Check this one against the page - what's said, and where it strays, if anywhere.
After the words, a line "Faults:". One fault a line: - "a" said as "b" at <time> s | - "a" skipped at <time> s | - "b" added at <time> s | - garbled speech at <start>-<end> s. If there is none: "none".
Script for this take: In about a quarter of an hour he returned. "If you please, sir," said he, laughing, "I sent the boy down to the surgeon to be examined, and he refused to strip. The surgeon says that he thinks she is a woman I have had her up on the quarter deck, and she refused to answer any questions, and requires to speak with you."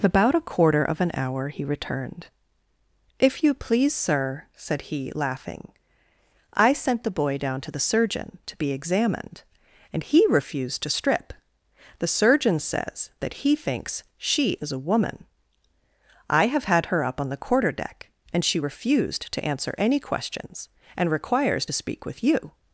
about a quarter of an hour he returned. "If you please, sir," said he, laughing, "I sent the boy down to the surgeon to be examined, and he refused to strip. The surgeon says that he thinks she is a woman I have had her up on the quarter deck, and she refused to answer any questions, and requires to speak with you."
Faults:
- "In" skipped at 0.0 s